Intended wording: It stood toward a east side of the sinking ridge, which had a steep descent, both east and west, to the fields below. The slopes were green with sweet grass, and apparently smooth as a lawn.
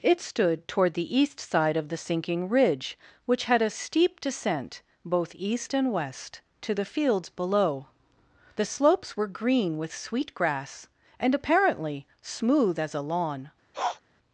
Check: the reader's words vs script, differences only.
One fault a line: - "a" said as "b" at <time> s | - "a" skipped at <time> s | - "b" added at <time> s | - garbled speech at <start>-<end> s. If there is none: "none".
- "a" said as "the" at 0.9 s